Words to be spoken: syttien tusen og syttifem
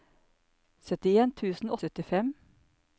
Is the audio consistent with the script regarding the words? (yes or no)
yes